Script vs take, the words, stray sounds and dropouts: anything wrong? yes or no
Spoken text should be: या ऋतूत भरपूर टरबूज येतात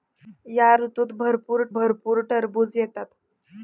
yes